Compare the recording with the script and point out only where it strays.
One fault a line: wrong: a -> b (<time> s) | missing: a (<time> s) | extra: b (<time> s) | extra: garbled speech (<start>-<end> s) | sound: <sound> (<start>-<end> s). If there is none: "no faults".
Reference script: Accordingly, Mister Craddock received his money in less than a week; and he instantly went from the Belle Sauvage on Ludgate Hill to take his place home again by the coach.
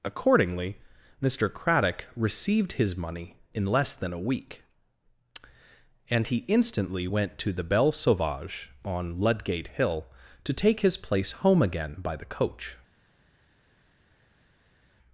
wrong: from -> to (7.4 s)